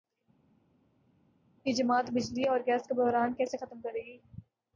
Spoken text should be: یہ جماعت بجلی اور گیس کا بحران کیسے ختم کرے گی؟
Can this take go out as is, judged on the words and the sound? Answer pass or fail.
pass